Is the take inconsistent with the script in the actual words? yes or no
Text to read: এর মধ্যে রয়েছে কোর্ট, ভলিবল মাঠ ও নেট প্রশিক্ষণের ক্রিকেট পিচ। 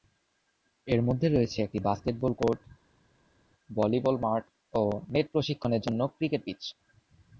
yes